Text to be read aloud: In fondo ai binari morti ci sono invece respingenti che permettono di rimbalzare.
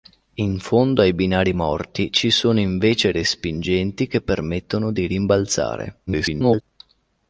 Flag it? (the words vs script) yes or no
yes